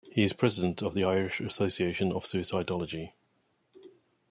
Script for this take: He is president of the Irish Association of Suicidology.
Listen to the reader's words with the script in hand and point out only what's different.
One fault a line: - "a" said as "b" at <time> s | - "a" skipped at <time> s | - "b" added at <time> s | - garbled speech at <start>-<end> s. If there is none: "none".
none